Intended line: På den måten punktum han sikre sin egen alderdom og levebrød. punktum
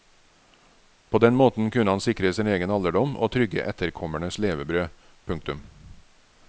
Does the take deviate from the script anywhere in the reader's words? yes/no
yes